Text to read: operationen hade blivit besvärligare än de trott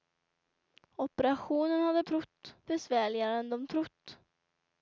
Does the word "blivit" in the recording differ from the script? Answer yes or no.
yes